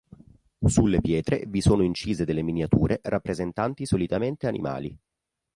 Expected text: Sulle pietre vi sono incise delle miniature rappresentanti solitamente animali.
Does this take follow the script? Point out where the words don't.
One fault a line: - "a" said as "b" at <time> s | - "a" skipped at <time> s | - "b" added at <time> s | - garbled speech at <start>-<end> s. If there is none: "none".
none